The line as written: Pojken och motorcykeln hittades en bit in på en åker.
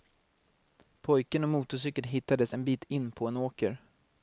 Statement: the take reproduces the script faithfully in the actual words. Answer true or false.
true